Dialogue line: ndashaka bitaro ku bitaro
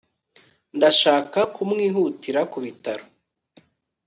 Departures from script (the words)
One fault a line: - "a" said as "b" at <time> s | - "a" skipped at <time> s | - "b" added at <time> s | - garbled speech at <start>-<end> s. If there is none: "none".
- "bitaro" said as "kumwihutira" at 1.5 s